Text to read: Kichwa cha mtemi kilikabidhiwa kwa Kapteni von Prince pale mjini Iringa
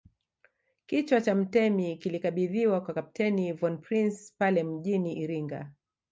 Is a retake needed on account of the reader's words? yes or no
no